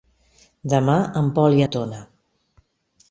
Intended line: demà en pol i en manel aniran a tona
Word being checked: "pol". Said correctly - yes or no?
yes